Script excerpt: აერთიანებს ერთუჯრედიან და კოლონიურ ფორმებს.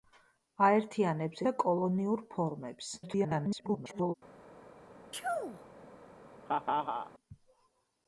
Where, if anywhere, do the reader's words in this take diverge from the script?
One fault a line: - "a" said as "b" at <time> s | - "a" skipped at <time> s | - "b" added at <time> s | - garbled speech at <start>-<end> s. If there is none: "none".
- "ერთუჯრედიან" skipped at 1.4 s
- garbled speech at 3.0-4.1 s